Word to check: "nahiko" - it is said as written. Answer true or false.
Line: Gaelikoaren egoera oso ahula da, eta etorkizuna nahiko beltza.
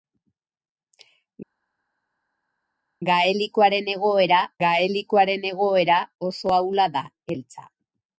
false